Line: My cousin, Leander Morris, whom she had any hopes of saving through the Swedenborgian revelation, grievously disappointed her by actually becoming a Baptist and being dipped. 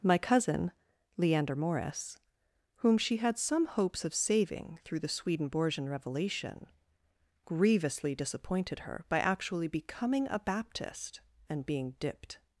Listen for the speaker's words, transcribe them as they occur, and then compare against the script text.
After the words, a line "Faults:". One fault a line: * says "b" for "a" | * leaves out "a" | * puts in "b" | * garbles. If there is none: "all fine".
My cousin, Leander Morris, whom she had some hopes of saving through the Swedenborgian revelation, grievously disappointed her by actually becoming a Baptist and being dipped.
Faults:
* says "some" for "any"